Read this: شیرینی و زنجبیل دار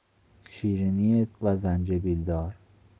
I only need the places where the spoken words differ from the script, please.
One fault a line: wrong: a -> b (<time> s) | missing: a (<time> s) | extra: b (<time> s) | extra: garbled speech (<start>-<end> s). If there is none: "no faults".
no faults